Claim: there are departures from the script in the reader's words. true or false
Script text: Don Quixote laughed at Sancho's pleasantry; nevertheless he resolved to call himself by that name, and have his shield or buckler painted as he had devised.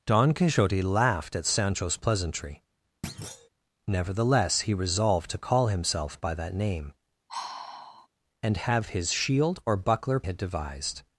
true